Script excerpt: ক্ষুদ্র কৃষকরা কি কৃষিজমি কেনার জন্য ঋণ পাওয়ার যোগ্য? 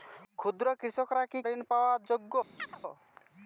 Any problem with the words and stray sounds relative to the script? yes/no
yes